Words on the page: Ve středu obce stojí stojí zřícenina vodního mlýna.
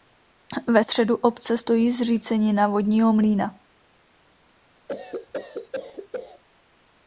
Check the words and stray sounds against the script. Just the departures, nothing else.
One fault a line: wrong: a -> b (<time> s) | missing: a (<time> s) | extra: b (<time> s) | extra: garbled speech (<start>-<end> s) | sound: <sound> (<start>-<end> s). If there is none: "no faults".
missing: stojí (1.9 s)
sound: cough (4.9-6.4 s)